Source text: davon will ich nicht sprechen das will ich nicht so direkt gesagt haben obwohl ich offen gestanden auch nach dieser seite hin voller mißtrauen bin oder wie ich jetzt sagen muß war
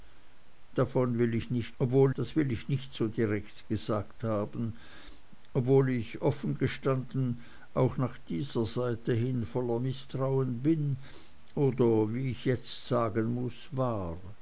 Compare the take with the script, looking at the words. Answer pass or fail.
fail